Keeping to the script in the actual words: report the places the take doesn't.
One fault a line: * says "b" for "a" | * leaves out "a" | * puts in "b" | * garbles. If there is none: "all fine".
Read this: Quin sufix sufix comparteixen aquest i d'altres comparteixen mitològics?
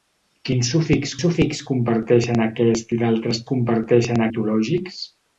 all fine